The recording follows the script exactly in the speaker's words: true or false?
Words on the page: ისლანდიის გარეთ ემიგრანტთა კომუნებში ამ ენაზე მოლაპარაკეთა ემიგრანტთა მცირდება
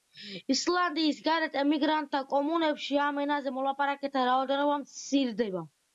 false